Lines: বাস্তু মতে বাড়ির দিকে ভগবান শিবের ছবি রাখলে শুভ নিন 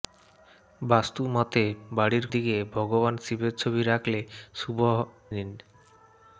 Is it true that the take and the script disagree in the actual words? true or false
false